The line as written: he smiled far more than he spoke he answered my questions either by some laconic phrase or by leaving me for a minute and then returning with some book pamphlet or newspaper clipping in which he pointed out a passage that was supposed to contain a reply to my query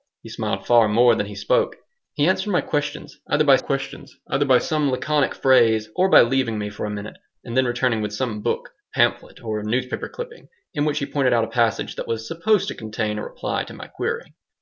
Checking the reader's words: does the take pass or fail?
fail